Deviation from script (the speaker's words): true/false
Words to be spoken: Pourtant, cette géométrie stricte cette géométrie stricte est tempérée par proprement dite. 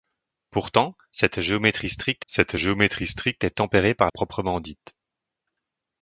false